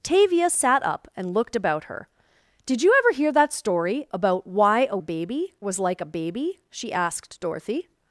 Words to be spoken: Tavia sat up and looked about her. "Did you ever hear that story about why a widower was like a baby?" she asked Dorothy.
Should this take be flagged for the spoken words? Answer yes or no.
yes